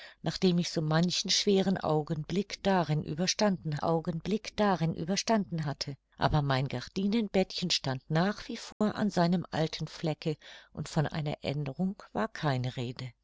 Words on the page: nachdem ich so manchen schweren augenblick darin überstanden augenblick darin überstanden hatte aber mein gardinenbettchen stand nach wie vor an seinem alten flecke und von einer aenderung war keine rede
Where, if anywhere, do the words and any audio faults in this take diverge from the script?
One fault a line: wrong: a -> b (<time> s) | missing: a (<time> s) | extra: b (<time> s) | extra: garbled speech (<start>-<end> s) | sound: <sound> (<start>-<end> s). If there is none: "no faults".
sound: dropout (8.7-8.8 s)